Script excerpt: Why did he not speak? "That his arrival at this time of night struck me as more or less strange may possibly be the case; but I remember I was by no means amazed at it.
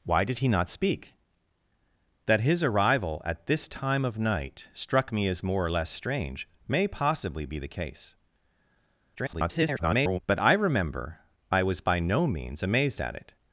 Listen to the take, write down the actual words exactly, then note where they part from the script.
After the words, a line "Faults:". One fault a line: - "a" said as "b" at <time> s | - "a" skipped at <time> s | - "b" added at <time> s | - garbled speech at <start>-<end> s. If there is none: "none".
Why did he not speak? "That his arrival at this time of night struck me as more or less strange may possibly be the case; [garbled] but I remember I was by no means amazed at it.
Faults:
- garbled speech at 9.1-10.2 s